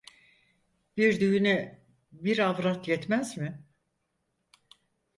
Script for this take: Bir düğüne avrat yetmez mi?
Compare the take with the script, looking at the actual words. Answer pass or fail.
fail